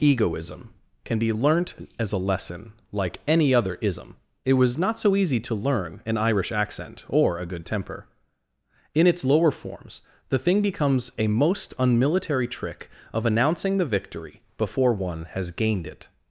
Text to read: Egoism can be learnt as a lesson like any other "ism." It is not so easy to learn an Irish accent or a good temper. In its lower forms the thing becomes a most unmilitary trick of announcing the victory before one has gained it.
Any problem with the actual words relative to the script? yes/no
yes